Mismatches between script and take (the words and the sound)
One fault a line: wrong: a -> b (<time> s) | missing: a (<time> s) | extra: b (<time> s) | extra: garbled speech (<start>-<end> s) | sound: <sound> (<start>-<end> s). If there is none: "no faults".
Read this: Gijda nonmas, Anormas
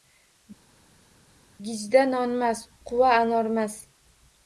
extra: Quva (2.9 s)